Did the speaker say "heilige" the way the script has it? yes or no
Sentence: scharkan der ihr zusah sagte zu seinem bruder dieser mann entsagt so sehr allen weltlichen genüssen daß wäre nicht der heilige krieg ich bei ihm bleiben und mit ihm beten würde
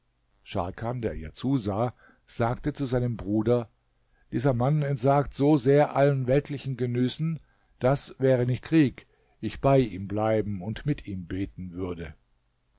no